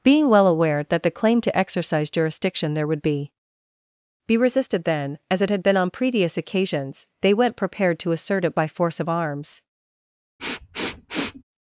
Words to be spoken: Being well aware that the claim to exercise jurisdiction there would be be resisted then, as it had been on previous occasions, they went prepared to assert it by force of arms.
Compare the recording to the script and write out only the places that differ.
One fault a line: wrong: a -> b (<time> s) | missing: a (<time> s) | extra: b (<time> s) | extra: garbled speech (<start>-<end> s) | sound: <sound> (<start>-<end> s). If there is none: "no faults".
sound: sniff (10.4-11.4 s)